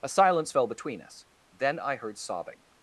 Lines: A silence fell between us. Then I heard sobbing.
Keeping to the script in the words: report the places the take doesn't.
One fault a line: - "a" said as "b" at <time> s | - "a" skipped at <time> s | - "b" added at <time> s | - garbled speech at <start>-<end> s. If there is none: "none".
none